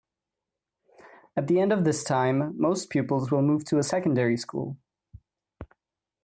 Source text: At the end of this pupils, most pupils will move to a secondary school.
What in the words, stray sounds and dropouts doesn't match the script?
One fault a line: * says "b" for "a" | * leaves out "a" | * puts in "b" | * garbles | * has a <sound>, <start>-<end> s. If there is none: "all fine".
* says "time" for "pupils"